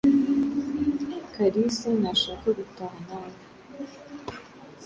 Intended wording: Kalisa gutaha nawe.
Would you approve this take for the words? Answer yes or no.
no